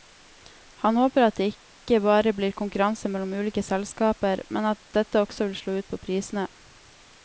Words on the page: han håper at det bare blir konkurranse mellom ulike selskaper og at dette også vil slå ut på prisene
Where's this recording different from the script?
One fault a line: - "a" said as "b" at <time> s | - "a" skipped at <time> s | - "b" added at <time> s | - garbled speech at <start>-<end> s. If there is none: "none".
- "ikke" added at 1.5 s
- "og" said as "men" at 4.5 s